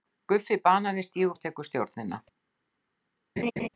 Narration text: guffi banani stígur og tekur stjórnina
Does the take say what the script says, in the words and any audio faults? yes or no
no